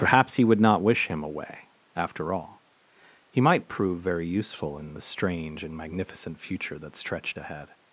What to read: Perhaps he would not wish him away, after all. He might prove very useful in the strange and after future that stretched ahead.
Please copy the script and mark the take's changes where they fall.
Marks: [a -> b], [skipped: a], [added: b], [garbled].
Perhaps he would not wish him away, after all. He might prove very useful in the strange and [after -> magnificent] future that stretched ahead.